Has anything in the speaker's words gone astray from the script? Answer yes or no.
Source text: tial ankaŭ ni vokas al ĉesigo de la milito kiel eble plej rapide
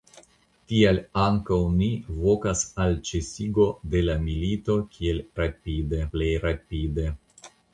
yes